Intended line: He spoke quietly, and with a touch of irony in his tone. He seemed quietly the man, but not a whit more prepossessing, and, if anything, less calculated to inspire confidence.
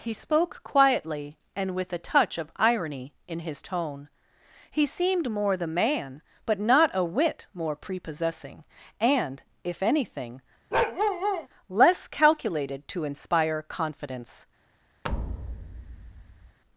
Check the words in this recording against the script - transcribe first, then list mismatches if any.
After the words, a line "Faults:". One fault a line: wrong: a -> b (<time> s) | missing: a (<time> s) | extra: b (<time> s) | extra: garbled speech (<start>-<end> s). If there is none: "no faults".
He spoke quietly, and with a touch of irony in his tone. He seemed more the man, but not a whit more prepossessing, and, if anything, less calculated to inspire confidence.
Faults:
wrong: quietly -> more (5.3 s)